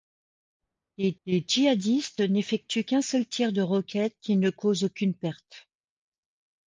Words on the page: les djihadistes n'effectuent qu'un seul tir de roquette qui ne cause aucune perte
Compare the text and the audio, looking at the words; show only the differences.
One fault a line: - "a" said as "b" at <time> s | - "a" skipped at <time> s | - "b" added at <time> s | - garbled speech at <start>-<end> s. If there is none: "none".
- "les" added at 1.3 s